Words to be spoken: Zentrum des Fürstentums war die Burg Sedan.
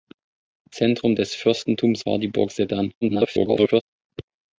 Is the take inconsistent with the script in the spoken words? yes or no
yes